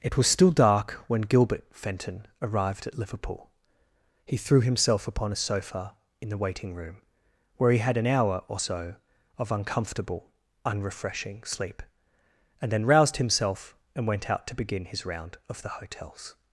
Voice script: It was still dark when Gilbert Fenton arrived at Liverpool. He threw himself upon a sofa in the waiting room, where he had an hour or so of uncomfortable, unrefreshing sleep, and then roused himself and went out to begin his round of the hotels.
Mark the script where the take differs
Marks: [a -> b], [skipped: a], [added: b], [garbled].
It was still dark when Gilbert Fenton arrived at Liverpool. He threw himself upon a sofa in the waiting room, where he had an hour or so of uncomfortable, unrefreshing sleep, and then roused himself and went out to begin his round of the hotels.